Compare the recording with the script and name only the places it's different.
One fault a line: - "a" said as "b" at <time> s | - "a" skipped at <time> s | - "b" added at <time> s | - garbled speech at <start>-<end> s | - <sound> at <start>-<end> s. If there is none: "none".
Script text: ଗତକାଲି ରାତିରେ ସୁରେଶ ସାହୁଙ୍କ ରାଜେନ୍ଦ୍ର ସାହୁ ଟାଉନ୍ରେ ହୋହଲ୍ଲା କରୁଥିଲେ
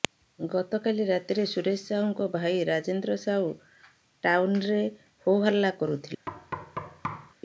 - "ଭାଇ" added at 2.4 s
- thud at 6.3-7.3 s